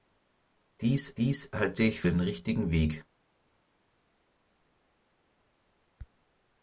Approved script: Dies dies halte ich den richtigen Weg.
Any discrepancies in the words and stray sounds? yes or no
no